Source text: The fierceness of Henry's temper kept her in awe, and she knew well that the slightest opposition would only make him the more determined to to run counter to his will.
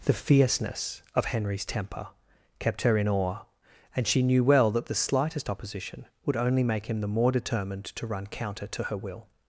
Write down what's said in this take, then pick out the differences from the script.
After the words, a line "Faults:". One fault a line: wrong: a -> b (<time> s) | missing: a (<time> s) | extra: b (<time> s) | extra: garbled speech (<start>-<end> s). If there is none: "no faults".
The fierceness of Henry's temper kept her in awe, and she knew well that the slightest opposition would only make him the more determined to run counter to her will.
Faults:
missing: to (8.1 s)
wrong: his -> her (8.8 s)